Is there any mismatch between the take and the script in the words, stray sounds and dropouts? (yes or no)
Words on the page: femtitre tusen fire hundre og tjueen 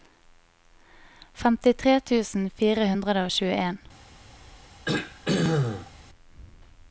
yes